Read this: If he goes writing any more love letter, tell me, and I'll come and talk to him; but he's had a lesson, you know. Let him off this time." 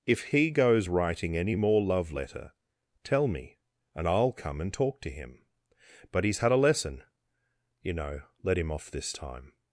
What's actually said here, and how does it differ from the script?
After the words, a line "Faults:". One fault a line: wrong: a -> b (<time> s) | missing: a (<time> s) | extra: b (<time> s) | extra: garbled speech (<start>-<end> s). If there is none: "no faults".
If he goes writing any more love letter, tell me, and I'll come and talk to him; but he's had a lesson, you know. Let him off this time."
Faults:
no faults